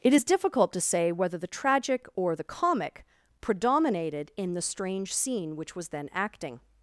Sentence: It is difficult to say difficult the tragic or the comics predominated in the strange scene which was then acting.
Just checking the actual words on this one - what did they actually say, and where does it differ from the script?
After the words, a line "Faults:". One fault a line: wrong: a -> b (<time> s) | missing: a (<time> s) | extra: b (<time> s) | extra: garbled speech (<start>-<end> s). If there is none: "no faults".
It is difficult to say whether the tragic or the comic predominated in the strange scene which was then acting.
Faults:
wrong: difficult -> whether (1.1 s)
wrong: comics -> comic (2.4 s)